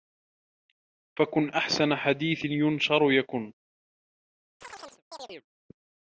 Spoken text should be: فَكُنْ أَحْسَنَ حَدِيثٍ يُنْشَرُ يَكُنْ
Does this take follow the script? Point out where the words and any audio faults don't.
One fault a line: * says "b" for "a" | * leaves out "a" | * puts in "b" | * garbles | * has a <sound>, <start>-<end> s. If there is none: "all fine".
* has a chirp, 4.6-5.5 s